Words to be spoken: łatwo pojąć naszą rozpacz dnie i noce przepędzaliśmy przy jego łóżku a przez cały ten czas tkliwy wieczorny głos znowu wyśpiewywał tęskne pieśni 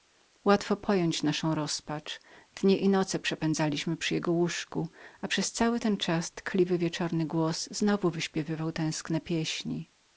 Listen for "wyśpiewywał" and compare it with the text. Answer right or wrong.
right